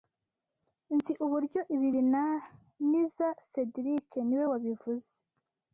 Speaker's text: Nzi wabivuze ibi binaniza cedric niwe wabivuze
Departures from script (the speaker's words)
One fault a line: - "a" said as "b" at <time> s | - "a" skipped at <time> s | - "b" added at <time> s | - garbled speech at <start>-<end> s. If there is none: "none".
- "wabivuze" said as "uburyo" at 1.2 s